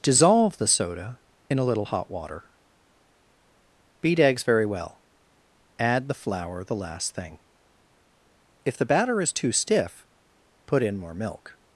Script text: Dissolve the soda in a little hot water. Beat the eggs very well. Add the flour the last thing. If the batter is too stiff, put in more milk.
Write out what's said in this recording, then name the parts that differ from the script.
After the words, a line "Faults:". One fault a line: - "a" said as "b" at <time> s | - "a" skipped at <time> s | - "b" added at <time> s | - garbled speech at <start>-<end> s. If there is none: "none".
Dissolve the soda in a little hot water. Beat eggs very well. Add the flour the last thing. If the batter is too stiff, put in more milk.
Faults:
- "the" skipped at 4.2 s